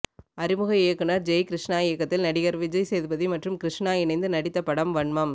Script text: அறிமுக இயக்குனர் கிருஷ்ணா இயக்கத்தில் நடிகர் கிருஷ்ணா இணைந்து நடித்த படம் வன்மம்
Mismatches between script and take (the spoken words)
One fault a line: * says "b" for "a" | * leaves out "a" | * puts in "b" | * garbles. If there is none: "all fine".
* puts in "ஜெய்"
* puts in "விஜய் சேதுபதி மற்றும்"